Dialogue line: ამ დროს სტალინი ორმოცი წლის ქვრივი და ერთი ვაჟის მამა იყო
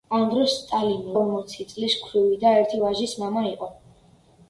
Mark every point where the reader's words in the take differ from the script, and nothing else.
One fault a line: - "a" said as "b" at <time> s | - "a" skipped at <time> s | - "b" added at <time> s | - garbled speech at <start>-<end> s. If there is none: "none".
none